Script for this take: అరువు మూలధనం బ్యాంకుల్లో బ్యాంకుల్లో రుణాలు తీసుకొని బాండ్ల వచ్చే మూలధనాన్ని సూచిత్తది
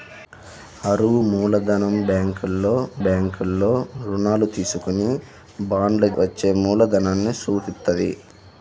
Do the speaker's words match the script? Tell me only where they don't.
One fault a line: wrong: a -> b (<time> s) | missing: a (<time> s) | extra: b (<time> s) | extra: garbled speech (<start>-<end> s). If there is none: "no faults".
no faults